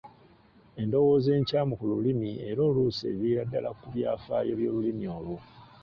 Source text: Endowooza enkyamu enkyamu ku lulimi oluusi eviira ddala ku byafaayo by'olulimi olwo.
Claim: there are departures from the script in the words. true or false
true